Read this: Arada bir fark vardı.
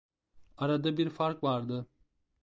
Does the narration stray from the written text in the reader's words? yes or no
no